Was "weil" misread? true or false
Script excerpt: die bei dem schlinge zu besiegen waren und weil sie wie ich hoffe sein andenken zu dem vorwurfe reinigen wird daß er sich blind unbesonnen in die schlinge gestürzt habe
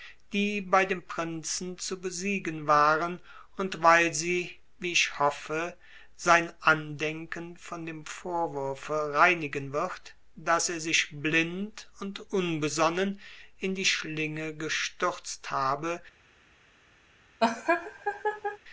false